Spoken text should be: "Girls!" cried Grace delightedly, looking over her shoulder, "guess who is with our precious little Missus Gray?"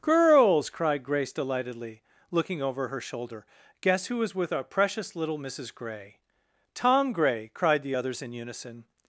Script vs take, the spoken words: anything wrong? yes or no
yes